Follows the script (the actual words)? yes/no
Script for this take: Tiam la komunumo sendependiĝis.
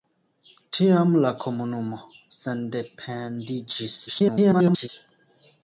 no